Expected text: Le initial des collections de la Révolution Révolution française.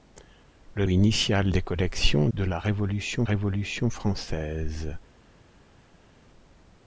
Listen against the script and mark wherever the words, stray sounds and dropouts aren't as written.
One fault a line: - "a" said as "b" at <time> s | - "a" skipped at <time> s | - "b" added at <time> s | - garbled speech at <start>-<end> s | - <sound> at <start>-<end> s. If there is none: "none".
none